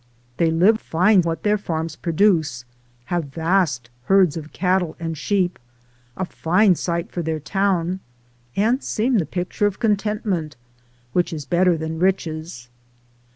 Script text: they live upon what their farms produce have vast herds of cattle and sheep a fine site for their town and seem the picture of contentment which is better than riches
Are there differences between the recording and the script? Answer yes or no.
yes